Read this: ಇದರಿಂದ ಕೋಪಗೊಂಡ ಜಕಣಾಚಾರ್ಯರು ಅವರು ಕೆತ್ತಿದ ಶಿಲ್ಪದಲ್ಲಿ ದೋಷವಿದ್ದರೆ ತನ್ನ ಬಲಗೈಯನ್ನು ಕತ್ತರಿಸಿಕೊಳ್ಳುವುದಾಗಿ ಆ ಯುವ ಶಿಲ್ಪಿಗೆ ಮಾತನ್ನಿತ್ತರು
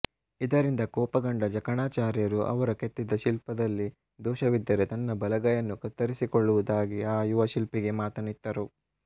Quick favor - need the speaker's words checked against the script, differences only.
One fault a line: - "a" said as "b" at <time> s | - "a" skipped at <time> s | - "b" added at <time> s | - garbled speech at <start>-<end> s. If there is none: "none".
none